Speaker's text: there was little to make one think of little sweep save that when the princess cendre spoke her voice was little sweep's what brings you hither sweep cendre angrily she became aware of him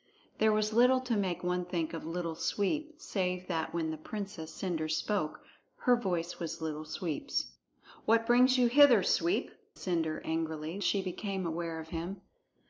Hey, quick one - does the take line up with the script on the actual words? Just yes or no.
yes